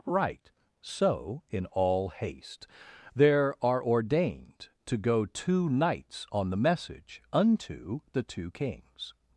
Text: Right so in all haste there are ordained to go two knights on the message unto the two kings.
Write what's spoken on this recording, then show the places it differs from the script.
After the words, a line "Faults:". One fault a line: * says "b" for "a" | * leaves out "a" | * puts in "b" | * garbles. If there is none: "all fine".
Right so in all haste there are ordained to go two knights on the message unto the two kings.
Faults:
all fine